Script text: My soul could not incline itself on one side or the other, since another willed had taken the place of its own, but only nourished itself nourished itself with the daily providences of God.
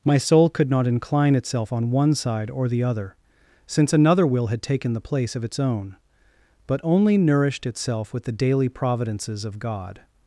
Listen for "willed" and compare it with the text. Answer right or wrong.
wrong